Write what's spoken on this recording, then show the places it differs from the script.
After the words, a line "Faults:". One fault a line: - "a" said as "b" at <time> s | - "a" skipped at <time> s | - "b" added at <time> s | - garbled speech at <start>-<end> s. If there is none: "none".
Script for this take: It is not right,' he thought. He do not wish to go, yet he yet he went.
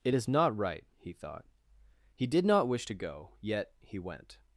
It is not right,' he thought. He did not wish to go, yet he went.
Faults:
- "do" said as "did" at 2.3 s
- "yet he" skipped at 4.0 s